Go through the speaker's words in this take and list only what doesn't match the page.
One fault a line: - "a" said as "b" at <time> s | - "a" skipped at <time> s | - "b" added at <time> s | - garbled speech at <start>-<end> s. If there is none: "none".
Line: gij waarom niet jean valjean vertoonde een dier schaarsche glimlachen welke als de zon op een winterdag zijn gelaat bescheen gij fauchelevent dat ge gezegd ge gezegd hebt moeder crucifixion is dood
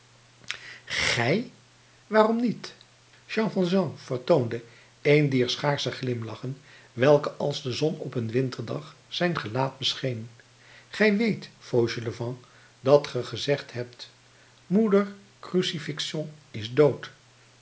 - "weet" added at 11.2 s
- "ge gezegd" skipped at 13.7 s